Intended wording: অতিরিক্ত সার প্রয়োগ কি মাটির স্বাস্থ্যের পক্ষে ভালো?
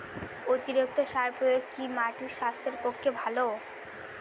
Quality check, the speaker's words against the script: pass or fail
pass